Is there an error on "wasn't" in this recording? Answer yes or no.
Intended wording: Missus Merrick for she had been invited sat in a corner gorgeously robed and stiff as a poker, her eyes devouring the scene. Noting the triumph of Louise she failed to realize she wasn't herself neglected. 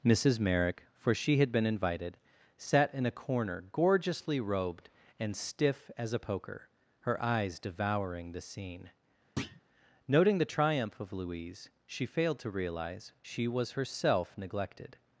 yes